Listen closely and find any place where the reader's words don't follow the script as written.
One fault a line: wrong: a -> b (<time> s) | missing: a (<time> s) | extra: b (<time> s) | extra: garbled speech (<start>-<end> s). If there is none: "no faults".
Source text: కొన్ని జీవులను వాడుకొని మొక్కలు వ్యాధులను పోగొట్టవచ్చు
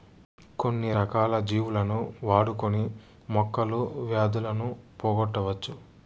extra: రకాల (0.9 s)